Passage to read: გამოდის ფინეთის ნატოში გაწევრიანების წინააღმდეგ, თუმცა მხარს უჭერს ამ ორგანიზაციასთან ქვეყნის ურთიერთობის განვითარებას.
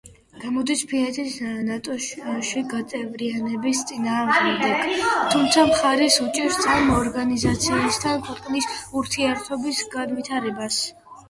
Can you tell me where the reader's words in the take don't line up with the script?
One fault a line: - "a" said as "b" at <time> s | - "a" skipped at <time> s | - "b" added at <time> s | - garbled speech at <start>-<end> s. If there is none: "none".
none